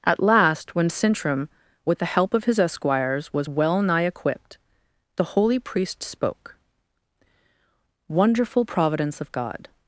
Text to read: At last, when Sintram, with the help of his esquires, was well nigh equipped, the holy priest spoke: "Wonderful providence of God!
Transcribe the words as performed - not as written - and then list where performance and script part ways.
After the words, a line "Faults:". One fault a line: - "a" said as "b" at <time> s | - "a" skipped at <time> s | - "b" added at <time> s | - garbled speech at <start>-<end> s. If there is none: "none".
At last, when Sintram, with the help of his esquires, was well nigh equipped, the holy priest spoke: "Wonderful providence of God!
Faults:
none